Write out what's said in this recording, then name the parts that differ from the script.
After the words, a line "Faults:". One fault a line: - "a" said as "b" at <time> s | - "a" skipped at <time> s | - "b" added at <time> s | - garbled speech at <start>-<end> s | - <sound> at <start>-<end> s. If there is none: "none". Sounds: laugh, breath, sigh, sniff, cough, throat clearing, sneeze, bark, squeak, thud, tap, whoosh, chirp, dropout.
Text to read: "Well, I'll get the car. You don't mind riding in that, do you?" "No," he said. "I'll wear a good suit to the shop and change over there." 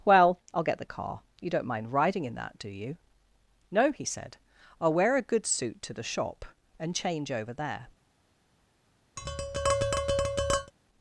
"Well, I'll get the car. You don't mind riding in that, do you?" "No," he said. "I'll wear a good suit to the shop and change over there."
Faults:
- tap at 9.2-10.7 s